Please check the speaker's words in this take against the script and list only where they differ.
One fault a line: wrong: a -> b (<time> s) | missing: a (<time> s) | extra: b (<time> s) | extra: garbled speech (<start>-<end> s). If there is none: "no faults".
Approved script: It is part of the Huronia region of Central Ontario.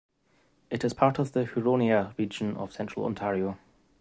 no faults